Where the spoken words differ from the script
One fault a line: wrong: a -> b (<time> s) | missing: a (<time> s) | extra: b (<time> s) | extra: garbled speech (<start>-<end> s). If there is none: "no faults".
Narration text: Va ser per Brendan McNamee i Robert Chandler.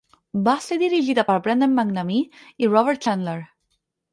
extra: dirigida (0.8 s)